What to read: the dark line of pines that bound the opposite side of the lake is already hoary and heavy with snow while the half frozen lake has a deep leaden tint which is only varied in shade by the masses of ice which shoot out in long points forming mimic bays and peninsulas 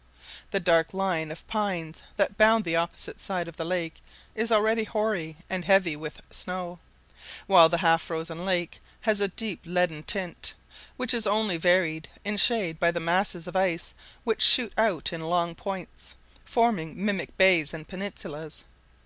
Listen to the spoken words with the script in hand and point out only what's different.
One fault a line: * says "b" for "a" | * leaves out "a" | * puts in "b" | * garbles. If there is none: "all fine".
all fine